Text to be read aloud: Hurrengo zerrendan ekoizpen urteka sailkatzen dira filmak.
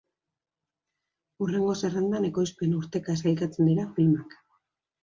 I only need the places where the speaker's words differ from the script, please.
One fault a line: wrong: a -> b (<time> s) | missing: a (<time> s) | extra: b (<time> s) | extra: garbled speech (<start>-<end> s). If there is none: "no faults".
no faults